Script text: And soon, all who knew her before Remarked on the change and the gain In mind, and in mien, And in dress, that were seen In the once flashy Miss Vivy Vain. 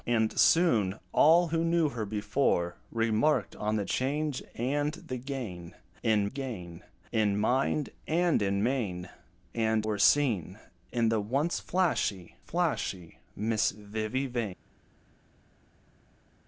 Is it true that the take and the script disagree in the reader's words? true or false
true